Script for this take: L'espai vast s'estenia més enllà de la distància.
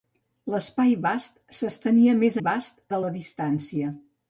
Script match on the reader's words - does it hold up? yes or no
no